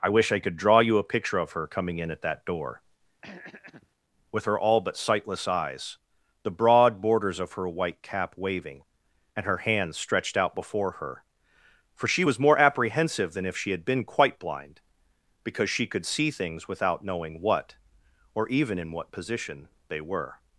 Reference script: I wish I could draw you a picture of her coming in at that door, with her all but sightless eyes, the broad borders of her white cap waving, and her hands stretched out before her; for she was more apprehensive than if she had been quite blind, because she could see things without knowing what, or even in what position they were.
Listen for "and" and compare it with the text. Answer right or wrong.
right